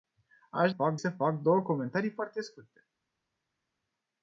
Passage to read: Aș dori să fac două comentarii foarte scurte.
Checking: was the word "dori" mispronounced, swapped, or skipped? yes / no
yes